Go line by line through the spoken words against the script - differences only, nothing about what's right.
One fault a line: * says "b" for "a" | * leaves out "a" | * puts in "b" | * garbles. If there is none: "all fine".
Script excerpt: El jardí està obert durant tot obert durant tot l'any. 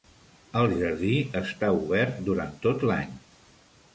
* leaves out "obert durant tot"